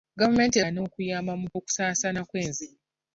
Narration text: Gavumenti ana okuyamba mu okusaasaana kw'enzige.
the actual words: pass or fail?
pass